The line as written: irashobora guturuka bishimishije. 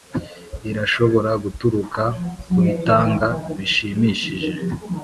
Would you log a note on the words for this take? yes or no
yes